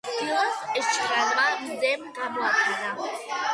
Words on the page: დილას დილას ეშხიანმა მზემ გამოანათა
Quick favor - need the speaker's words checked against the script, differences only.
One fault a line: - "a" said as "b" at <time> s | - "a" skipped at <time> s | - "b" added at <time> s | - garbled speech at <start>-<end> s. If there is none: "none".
- "დილას" skipped at 0.6 s